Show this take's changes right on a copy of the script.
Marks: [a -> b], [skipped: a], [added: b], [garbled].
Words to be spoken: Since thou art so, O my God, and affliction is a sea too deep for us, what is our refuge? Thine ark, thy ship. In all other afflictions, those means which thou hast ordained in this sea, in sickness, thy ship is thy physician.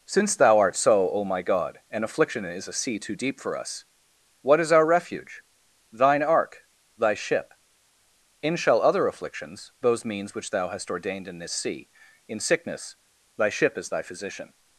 Since thou art so, O my God, and affliction is a sea too deep for us, what is our refuge? Thine ark, thy ship. In [all -> shall] other afflictions, those means which thou hast ordained in this sea, in sickness, thy ship is thy physician.